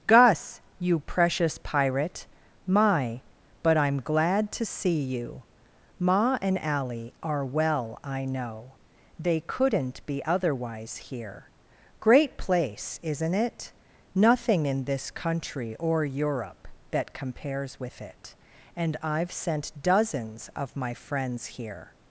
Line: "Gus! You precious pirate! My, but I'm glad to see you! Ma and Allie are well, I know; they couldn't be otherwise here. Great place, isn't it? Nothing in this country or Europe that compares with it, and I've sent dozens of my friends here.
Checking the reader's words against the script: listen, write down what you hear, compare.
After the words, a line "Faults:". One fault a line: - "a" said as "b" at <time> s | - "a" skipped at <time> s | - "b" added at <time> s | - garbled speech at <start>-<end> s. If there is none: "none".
"Gus! You precious pirate! My, but I'm glad to see you! Ma and Allie are well, I know; they couldn't be otherwise here. Great place, isn't it? Nothing in this country or Europe that compares with it, and I've sent dozens of my friends here.
Faults:
none